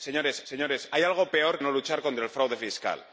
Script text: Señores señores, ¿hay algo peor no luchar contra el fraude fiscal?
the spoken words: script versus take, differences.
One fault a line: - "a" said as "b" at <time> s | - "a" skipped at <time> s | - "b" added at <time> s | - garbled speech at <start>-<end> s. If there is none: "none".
none